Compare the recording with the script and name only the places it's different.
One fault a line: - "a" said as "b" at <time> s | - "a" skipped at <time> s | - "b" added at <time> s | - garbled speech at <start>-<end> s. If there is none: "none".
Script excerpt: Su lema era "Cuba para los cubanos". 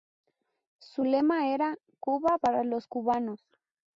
none